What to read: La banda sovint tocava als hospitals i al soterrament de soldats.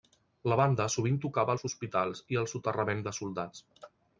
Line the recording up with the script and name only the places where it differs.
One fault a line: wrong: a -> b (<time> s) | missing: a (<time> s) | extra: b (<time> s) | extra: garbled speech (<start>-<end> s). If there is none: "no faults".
no faults